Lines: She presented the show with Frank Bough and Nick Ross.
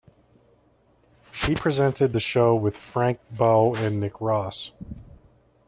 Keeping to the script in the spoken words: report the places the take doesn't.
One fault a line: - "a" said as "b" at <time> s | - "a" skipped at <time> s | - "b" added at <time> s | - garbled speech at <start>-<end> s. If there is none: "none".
none